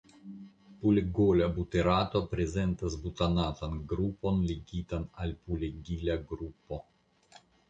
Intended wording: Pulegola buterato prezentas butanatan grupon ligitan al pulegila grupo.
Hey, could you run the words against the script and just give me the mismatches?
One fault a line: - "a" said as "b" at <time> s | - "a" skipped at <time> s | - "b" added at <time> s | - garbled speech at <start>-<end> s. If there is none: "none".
none